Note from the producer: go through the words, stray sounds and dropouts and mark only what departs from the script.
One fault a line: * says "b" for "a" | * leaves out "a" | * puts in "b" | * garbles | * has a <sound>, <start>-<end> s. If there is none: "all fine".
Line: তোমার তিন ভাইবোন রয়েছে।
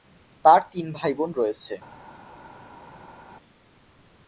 * says "তার" for "তোমার"